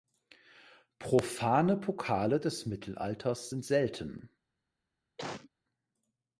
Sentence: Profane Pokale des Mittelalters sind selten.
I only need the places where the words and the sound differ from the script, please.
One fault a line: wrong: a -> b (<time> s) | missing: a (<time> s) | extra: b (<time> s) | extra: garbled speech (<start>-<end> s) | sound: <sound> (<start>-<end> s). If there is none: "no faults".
sound: cough (5.2-5.5 s)